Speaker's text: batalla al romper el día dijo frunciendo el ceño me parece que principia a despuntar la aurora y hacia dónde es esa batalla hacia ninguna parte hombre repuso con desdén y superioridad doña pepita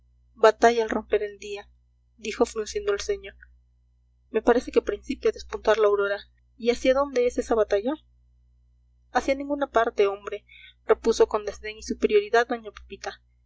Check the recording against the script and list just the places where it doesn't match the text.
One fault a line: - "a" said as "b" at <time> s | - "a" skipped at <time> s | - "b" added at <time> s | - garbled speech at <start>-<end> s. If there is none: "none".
none